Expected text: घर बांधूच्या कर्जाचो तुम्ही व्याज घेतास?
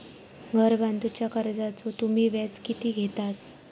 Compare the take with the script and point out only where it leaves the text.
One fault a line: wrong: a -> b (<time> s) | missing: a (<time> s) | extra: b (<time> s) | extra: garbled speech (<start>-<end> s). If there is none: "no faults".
extra: किती (2.6 s)